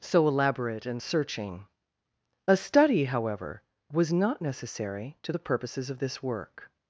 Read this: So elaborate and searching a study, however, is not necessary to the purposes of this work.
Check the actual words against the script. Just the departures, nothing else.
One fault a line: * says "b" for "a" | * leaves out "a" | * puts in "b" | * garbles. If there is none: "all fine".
* says "was" for "is"